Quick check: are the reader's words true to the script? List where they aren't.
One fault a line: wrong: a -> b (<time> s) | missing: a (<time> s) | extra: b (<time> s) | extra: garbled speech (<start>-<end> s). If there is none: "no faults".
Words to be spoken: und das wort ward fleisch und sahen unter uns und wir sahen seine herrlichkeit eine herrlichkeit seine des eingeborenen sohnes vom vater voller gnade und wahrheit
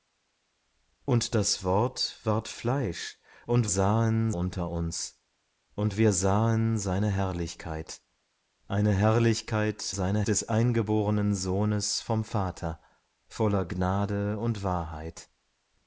no faults